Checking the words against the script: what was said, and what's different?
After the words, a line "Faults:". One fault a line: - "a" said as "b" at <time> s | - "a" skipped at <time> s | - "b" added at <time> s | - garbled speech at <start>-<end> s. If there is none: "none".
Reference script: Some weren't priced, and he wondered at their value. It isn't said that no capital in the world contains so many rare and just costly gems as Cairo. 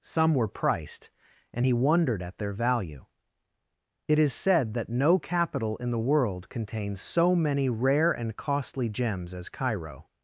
Some were priced, and he wondered at their value. It is said that no capital in the world contains so many rare and costly gems as Cairo.
Faults:
- "weren't" said as "were" at 0.3 s
- "isn't" said as "is" at 4.2 s
- "just" skipped at 8.4 s